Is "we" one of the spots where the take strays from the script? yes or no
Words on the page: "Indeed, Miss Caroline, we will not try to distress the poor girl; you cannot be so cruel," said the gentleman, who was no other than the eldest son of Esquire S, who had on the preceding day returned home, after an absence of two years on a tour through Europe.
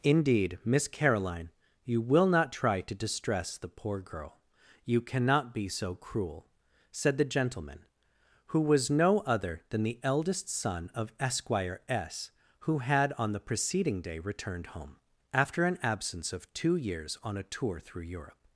yes